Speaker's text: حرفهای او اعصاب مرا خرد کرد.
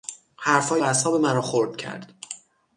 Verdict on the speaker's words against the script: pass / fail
fail